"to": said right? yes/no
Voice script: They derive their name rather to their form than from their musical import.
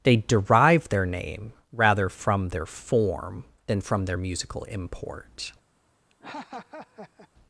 no